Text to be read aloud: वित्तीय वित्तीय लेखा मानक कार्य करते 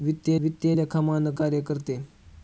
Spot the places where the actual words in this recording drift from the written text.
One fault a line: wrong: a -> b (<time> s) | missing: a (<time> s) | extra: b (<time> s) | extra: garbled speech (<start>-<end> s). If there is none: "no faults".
no faults